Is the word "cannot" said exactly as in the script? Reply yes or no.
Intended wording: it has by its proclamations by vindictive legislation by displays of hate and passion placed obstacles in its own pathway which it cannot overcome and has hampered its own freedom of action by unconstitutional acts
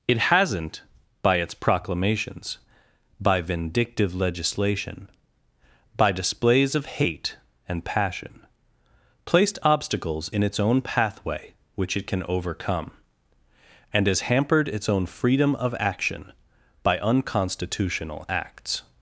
no